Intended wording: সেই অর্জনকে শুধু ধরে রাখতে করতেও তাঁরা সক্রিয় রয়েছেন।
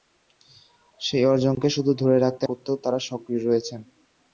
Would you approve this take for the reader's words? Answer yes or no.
yes